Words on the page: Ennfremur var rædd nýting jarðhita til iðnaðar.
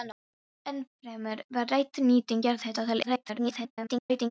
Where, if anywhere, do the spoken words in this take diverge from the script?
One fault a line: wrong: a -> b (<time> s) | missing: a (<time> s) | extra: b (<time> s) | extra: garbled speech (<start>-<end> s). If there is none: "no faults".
extra: garbled speech (3.0-4.3 s)